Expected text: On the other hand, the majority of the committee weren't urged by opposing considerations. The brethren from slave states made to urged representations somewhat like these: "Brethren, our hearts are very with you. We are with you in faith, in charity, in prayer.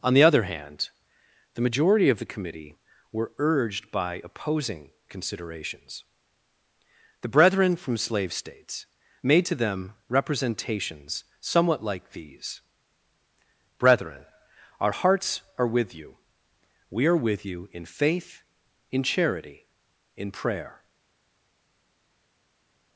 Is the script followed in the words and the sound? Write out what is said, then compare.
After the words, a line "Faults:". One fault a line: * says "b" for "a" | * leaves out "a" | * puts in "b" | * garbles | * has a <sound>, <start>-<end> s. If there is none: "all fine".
On the other hand, the majority of the committee were urged by opposing considerations. The brethren from slave states made to them representations somewhat like these: "Brethren, our hearts are with you. We are with you in faith, in charity, in prayer.
Faults:
* says "were" for "weren't"
* says "them" for "urged"
* leaves out "very"